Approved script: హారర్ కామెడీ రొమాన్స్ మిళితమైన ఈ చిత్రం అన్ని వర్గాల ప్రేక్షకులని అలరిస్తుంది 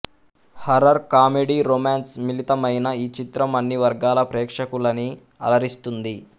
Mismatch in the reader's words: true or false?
false